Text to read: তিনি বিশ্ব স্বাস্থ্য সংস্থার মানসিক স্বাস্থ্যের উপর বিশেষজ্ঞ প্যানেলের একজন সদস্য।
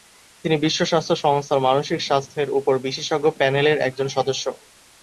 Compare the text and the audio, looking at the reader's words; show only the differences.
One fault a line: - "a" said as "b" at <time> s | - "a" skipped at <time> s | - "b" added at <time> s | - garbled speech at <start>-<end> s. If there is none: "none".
none